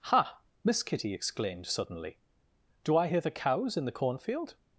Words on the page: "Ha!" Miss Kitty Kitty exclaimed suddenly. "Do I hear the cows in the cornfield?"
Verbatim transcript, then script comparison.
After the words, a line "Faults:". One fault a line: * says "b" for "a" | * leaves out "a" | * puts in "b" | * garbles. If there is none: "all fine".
"Ha!" Miss Kitty exclaimed suddenly. "Do I hear the cows in the cornfield?"
Faults:
* leaves out "Kitty"